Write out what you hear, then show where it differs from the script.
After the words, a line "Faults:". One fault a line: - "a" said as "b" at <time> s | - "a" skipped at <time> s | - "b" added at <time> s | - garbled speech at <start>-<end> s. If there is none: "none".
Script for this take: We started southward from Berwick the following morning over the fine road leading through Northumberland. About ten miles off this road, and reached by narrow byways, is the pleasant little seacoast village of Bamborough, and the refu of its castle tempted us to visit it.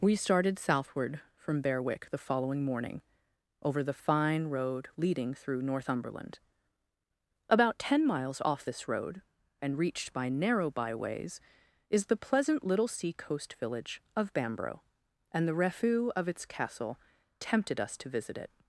We started southward from Berwick the following morning over the fine road leading through Northumberland. About ten miles off this road, and reached by narrow byways, is the pleasant little seacoast village of Bamborough, and the refu of its castle tempted us to visit it.
Faults:
none